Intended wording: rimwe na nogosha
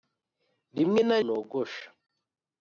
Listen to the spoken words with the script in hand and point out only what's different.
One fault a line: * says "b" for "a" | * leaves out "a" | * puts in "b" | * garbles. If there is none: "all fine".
all fine